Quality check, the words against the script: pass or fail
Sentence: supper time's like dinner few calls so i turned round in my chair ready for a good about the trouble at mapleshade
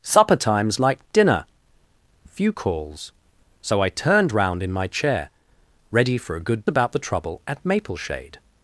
pass